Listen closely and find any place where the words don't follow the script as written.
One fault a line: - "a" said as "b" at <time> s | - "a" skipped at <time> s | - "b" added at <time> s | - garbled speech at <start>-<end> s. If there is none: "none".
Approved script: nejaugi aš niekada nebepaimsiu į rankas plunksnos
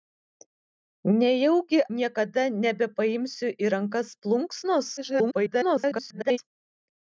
- "aš" skipped at 1.8 s
- garbled speech at 5.0-6.4 s